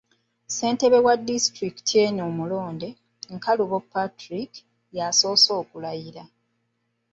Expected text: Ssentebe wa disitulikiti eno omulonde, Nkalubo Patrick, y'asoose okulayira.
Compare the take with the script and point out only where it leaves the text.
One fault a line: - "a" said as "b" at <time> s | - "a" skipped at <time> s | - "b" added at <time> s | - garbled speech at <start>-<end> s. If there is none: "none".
none